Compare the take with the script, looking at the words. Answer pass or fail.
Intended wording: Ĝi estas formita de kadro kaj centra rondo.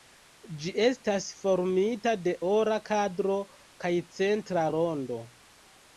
fail